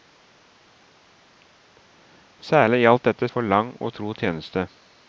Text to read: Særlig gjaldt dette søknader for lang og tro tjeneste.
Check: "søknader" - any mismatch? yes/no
yes